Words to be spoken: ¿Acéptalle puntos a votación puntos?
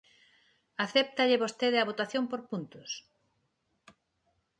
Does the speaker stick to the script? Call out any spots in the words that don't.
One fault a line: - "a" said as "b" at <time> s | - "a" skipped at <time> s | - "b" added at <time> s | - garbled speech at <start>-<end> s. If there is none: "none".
- "puntos" said as "vostede" at 1.4 s
- "por" added at 2.3 s